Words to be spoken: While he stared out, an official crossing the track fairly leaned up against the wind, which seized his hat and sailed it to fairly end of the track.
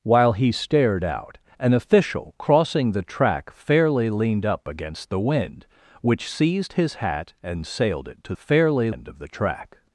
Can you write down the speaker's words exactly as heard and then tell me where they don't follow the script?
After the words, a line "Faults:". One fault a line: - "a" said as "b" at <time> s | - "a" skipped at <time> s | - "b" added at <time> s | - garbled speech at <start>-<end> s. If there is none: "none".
While he stared out, an official crossing the track fairly leaned up against the wind, which seized his hat and sailed it to fairly end of the track.
Faults:
none